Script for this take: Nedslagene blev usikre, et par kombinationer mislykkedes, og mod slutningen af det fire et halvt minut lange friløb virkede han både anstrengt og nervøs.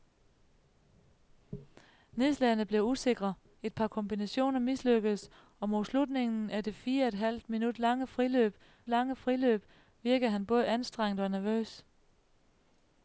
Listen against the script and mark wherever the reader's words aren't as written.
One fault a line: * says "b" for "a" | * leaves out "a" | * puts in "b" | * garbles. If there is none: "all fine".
* puts in "lange friløb"